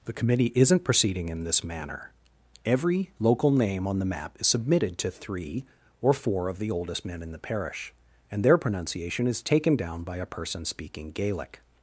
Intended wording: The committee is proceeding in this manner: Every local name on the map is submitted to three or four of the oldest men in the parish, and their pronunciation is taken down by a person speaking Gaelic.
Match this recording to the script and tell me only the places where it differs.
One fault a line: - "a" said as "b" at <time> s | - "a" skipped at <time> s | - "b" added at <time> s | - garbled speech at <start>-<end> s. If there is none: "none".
- "is" said as "isn't" at 0.6 s